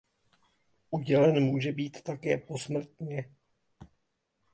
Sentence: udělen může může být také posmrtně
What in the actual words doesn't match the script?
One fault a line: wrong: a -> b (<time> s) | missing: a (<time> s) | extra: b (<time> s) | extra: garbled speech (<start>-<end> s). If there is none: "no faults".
missing: může (1.7 s)